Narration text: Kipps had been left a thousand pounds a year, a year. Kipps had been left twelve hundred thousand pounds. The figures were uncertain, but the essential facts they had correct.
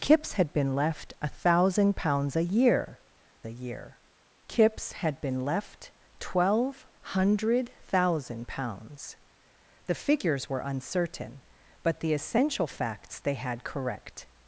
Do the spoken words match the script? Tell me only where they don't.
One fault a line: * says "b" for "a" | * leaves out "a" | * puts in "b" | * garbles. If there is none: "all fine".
all fine